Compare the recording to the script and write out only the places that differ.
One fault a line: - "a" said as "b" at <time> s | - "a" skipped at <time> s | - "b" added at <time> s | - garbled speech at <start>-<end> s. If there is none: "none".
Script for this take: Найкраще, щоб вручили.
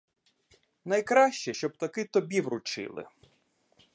- "таки тобі" added at 1.8 s